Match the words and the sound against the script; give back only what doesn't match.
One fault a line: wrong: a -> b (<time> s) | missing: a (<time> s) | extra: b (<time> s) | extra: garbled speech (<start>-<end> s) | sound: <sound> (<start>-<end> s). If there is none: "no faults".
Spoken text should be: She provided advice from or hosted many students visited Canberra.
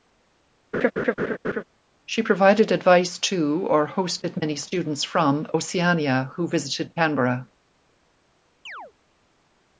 sound: laugh (0.7-1.6 s)
wrong: from -> to (3.2 s)
extra: from Oceania who (5.0 s)
sound: chirp (8.7-8.9 s)